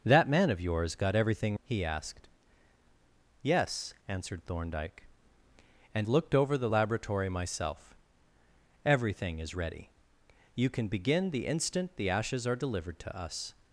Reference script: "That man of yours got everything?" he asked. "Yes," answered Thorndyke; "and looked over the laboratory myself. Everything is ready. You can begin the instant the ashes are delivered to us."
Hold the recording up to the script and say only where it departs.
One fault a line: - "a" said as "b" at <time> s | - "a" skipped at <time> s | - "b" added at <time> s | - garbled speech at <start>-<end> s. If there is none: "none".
none